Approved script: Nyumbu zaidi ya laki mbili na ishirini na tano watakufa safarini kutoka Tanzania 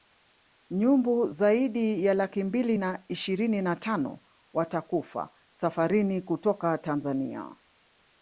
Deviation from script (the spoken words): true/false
false